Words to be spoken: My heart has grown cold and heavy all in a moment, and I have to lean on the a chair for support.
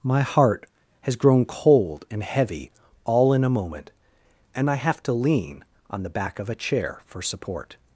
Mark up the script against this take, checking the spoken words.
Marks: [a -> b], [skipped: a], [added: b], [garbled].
My heart has grown cold and heavy all in a moment, and I have to lean on the [added: back of] a chair for support.